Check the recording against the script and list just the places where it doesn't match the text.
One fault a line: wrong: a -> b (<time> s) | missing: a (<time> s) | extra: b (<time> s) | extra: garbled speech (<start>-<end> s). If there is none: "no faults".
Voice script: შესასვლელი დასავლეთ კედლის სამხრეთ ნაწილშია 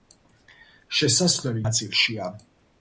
missing: დასავლეთ კედლის სამხრეთ (1.6 s)